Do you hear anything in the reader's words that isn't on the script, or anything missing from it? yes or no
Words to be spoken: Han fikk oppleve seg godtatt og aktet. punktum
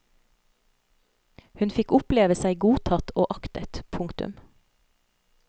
yes